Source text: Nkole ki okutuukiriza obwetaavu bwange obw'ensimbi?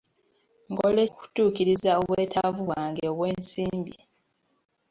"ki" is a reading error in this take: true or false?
true